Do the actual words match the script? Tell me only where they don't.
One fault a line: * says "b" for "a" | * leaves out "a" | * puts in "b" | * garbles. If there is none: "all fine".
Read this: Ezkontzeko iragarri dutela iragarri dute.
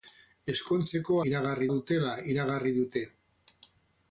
all fine